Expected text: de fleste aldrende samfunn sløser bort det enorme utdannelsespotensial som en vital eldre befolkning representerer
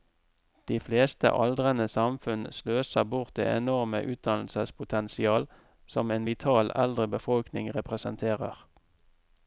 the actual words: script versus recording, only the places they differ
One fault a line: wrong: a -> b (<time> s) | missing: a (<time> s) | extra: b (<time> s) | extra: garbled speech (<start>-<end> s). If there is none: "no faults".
no faults